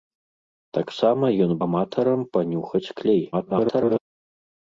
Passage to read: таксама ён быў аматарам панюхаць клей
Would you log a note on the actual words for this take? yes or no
yes